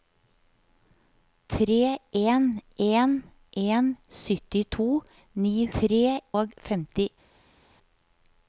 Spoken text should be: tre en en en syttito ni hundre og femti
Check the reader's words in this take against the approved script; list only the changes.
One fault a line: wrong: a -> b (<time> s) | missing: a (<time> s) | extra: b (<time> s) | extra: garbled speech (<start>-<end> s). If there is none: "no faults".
wrong: hundre -> tre (5.8 s)